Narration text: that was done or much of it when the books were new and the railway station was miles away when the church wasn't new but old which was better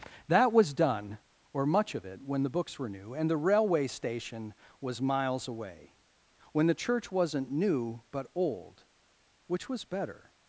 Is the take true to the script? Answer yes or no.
yes